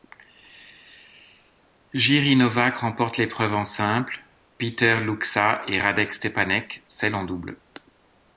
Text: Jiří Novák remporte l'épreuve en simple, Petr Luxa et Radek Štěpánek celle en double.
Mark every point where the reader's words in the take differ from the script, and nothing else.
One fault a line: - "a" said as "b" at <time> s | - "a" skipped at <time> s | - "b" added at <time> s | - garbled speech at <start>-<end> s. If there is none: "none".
none